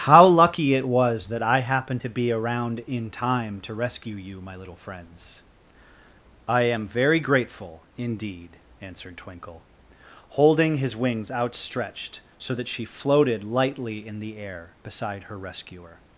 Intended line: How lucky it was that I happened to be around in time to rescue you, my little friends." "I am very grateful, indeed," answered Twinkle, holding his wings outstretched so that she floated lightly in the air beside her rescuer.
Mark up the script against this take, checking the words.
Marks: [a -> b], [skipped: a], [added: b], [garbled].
How lucky it was that I happened to be around in time to rescue you, my little friends." "I am very grateful, indeed," answered Twinkle, holding his wings outstretched so that she floated lightly in the air beside her rescuer.